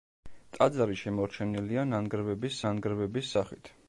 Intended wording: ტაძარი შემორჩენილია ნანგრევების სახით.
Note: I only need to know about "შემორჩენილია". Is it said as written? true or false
true